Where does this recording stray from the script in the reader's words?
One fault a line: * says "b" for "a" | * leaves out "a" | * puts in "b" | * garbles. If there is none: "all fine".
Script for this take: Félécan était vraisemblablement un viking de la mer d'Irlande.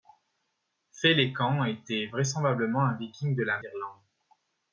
* leaves out "mer"